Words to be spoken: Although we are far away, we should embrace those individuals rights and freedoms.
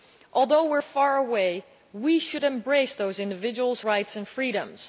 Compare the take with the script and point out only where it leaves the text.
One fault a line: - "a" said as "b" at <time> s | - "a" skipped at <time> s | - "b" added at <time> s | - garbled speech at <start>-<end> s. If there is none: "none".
none